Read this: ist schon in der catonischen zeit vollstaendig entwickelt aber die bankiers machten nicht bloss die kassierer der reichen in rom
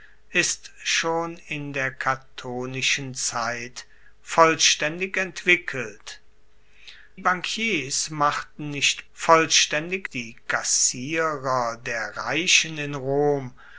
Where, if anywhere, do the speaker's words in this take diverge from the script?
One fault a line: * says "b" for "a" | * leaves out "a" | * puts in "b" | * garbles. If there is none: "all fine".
* leaves out "aber die"
* says "vollstaendig" for "bloss"